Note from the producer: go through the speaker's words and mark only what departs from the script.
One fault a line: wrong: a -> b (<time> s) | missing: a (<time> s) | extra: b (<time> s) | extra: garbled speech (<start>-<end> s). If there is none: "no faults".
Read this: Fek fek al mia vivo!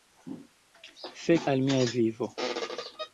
missing: fek (1.4 s)